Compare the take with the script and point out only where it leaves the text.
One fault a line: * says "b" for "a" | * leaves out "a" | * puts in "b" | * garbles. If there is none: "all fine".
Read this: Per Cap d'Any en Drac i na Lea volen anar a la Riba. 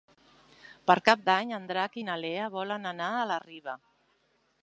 all fine